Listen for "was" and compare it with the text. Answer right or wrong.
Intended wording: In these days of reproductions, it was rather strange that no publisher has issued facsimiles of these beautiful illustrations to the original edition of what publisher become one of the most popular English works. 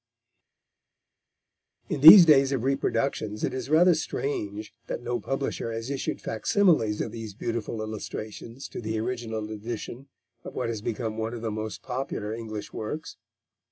wrong